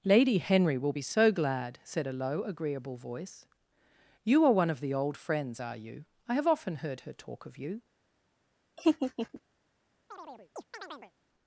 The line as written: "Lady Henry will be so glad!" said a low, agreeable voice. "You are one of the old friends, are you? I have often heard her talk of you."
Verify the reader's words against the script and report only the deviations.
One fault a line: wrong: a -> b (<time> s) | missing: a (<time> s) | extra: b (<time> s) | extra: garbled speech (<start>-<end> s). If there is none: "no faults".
no faults